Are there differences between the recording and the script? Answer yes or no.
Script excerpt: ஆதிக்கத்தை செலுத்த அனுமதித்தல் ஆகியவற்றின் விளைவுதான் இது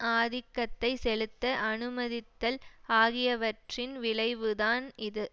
no